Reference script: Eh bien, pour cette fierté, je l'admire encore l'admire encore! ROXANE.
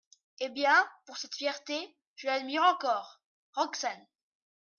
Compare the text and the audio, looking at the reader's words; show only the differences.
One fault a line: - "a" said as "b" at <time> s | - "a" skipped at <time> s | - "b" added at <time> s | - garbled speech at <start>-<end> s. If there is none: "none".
- "l'admire encore" skipped at 3.2 s